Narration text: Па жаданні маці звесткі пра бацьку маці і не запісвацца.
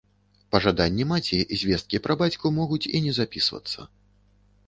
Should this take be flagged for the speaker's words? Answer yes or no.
yes